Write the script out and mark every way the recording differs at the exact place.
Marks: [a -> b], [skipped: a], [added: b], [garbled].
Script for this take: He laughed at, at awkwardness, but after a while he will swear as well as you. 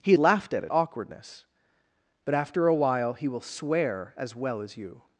He laughed at, at awkwardness, but after a while he will swear as well as you.